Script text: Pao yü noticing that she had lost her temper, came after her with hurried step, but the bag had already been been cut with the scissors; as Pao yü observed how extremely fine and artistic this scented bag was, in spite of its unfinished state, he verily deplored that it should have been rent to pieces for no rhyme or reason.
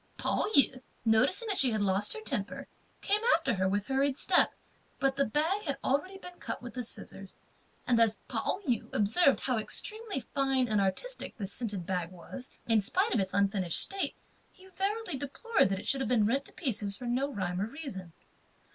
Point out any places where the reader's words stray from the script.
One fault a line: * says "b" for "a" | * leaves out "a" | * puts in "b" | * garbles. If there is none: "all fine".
* leaves out "been"
* puts in "and"